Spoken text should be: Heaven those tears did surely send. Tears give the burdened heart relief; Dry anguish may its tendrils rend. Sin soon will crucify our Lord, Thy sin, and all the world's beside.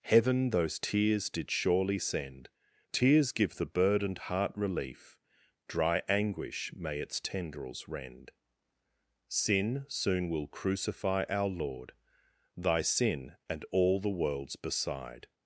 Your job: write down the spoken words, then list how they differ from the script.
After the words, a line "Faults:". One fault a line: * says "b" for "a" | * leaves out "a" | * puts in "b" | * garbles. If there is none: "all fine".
Heaven those tears did surely send. Tears give the burdened heart relief; Dry anguish may its tendrils rend. Sin soon will crucify our Lord, Thy sin, and all the world's beside.
Faults:
all fine